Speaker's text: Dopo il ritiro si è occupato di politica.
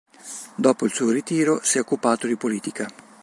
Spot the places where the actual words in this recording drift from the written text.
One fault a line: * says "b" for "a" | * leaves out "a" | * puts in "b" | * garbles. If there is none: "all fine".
* puts in "suo"